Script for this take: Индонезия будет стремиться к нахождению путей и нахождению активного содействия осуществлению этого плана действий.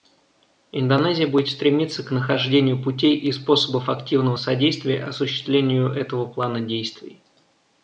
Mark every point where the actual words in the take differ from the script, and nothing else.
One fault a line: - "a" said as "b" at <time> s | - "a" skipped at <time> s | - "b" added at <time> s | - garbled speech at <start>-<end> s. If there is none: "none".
- "нахождению" said as "способов" at 3.3 s